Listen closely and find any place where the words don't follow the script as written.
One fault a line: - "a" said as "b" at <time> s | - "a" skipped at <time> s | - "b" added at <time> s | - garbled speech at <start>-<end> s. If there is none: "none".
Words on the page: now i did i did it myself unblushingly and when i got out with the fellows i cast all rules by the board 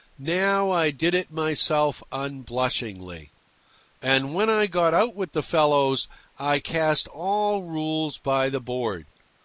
- "i did" skipped at 1.1 s